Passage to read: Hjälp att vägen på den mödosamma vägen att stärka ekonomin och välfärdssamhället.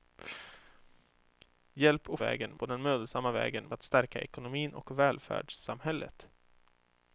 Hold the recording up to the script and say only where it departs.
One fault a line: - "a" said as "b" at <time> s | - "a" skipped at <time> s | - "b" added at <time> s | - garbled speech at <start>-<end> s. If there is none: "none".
none